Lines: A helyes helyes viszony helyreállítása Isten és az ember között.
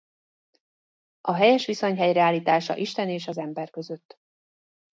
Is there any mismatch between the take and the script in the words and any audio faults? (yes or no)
yes